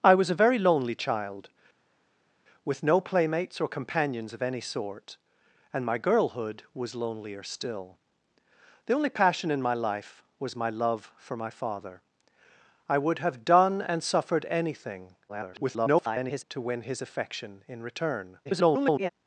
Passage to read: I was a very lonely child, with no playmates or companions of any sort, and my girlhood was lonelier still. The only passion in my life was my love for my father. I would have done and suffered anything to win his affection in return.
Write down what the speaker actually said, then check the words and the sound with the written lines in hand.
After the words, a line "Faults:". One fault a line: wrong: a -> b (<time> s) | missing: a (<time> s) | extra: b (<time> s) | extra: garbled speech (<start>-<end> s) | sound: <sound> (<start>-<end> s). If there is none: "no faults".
I was a very lonely child, with no playmates or companions of any sort, and my girlhood was lonelier still. The only passion in my life was my love for my father. I would have done and suffered anything [garbled] to win his affection in return. [garbled]
Faults:
extra: garbled speech (15.3-16.4 s)
extra: garbled speech (18.4-19.1 s)